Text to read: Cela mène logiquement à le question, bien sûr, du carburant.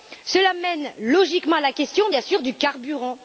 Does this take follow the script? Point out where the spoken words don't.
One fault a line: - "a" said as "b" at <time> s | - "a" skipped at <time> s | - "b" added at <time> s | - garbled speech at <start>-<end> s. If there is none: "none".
- "le" said as "la" at 1.6 s